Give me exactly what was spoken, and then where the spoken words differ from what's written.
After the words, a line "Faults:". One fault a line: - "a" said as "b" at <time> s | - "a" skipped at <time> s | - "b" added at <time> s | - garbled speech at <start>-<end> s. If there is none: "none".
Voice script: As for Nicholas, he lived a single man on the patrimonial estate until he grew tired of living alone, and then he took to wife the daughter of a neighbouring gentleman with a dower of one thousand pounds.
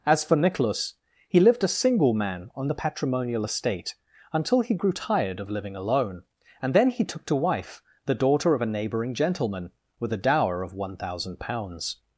As for Nicholas, he lived a single man on the patrimonial estate until he grew tired of living alone, and then he took to wife the daughter of a neighbouring gentleman with a dower of one thousand pounds.
Faults:
none